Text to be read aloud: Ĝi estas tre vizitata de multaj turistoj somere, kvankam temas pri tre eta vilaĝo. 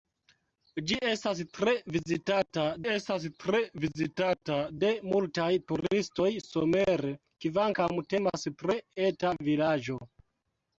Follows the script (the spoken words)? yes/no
no